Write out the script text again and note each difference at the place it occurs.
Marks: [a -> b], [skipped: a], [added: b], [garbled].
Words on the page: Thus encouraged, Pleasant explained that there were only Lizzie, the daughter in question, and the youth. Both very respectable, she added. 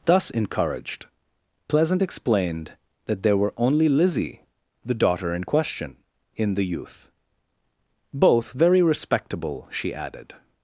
Thus encouraged, Pleasant explained that there were only Lizzie, the daughter in question, [and -> in] the youth. Both very respectable, she added.